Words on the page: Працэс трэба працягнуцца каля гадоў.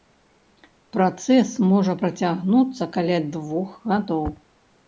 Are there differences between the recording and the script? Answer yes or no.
yes